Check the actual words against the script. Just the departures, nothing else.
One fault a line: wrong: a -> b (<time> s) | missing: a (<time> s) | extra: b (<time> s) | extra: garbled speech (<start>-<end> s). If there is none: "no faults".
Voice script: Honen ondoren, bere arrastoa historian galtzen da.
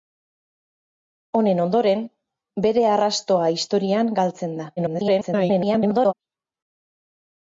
extra: garbled speech (4.8-6.1 s)